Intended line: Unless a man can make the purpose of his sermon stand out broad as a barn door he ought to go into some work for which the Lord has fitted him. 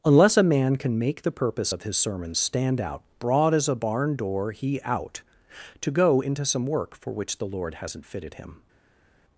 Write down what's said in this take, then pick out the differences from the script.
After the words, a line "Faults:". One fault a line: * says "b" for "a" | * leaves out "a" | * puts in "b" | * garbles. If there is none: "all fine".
Unless a man can make the purpose of his sermon stand out broad as a barn door he out to go into some work for which the Lord hasn't fitted him.
Faults:
* says "out" for "ought"
* says "hasn't" for "has"